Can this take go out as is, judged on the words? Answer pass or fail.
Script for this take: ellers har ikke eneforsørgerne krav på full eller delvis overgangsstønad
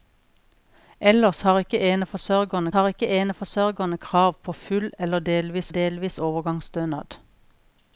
fail